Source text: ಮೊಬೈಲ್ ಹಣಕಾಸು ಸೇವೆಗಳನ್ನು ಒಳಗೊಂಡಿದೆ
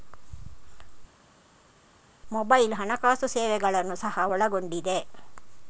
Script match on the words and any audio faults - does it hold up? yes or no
no